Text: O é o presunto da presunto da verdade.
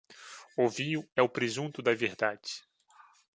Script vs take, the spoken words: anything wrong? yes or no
yes